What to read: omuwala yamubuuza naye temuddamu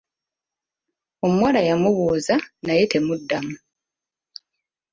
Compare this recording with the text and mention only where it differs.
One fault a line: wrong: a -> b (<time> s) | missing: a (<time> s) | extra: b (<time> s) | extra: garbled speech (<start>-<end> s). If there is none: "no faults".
no faults